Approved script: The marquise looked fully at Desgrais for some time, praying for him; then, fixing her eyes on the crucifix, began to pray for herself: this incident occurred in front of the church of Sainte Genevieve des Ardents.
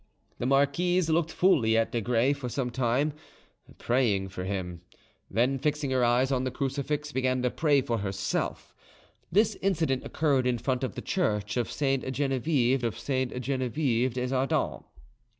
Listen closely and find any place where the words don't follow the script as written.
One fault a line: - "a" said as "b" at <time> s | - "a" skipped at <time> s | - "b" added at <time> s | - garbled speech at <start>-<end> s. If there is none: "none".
- "of Sainte Genevieve" added at 12.8 s